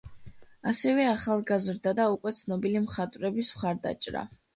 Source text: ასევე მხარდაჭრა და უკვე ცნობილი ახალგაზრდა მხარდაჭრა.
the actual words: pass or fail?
fail